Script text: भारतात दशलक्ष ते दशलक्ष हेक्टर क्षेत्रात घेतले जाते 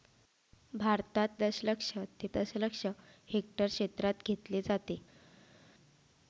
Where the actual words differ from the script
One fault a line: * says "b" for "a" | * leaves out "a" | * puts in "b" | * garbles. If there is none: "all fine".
all fine